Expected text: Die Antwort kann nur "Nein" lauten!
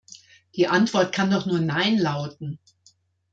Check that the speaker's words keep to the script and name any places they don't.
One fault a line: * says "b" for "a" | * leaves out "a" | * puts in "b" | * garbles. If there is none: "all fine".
* puts in "doch"